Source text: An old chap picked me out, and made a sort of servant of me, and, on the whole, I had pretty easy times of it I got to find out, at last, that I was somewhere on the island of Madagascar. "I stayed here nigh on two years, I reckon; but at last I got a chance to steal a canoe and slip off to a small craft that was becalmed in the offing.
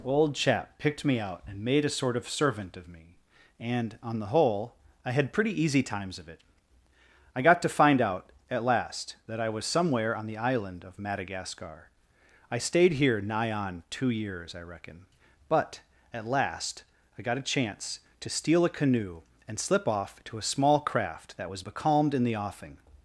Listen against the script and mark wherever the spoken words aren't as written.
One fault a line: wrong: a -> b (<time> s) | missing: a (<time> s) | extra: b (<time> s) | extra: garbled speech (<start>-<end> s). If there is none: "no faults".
missing: An (0.0 s)